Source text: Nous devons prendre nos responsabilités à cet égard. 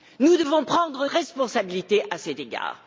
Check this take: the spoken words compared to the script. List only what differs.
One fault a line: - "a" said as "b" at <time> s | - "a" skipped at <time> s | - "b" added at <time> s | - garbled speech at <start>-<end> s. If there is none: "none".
- "nos" skipped at 1.1 s